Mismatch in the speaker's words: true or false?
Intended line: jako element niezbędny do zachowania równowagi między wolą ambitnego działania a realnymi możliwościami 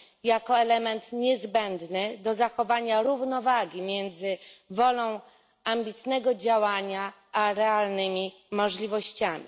false